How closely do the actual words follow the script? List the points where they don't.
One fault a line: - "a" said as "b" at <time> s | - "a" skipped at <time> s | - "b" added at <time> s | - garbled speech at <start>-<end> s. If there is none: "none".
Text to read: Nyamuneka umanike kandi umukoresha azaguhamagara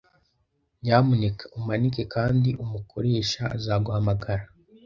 none